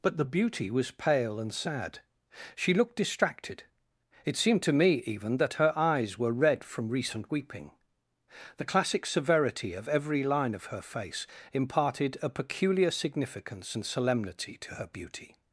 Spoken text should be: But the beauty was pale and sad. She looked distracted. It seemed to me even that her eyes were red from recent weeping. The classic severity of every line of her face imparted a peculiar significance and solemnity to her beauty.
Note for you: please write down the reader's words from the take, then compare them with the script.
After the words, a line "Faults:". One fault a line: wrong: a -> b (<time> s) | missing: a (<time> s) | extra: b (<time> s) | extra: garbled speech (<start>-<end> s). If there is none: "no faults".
But the beauty was pale and sad. She looked distracted. It seemed to me even that her eyes were red from recent weeping. The classic severity of every line of her face imparted a peculiar significance and solemnity to her beauty.
Faults:
no faults